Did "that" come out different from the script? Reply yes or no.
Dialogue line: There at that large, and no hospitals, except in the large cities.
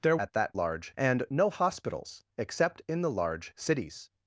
no